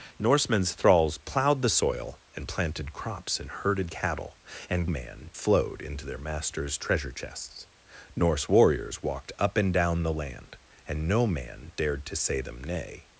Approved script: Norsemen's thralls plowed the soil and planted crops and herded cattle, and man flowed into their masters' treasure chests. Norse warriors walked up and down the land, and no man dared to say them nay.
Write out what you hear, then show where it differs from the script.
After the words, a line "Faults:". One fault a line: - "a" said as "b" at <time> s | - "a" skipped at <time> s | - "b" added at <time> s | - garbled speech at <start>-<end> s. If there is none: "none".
Norsemen's thralls plowed the soil and planted crops and herded cattle, and man flowed into their masters' treasure chests. Norse warriors walked up and down the land, and no man dared to say them nay.
Faults:
none